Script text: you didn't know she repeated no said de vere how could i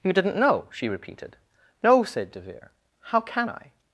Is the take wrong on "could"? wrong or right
wrong